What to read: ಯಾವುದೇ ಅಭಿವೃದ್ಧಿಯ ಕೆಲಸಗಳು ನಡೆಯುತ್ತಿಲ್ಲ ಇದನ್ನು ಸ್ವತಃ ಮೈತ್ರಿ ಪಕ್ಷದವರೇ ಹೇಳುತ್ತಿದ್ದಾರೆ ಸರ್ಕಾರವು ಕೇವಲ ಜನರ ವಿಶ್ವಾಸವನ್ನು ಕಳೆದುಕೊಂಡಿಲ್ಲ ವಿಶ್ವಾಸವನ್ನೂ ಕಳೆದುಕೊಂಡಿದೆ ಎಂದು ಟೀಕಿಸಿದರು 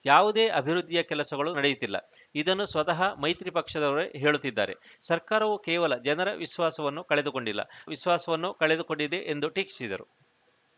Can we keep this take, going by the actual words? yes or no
yes